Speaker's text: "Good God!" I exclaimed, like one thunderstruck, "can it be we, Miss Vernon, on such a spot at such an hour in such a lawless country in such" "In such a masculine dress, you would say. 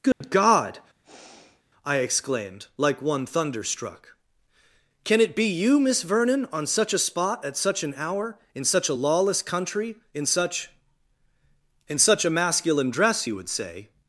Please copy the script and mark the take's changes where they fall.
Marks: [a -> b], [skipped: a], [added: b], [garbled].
"Good God!" I exclaimed, like one thunderstruck, "can it be [we, -> you] Miss Vernon, on such a spot at such an hour in such a lawless country in such" "In such a masculine dress, you would say.